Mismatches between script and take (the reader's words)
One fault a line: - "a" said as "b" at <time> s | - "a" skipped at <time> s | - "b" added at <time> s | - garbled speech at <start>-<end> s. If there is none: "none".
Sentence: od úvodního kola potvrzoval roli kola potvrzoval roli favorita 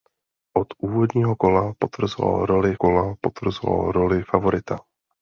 none